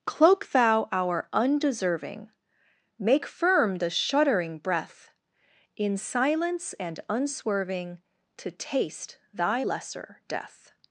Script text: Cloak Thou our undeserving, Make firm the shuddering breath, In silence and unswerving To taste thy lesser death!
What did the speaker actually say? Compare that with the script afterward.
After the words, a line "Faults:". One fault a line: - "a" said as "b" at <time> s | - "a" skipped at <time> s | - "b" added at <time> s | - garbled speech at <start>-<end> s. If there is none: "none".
Cloak Thou our undeserving, Make firm the shuddering breath, In silence and unswerving To taste thy lesser death!
Faults:
none